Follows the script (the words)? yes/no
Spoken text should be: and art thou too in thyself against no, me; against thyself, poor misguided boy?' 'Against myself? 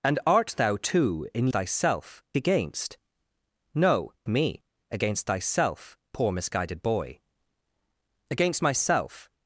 yes